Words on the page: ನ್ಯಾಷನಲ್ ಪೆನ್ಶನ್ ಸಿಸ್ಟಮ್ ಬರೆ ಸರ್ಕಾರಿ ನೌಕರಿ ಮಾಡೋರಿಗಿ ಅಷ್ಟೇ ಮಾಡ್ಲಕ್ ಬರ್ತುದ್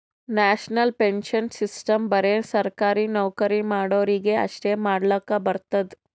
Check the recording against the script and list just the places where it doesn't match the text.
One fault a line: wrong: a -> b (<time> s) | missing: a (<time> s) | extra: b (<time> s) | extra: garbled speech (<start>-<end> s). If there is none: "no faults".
no faults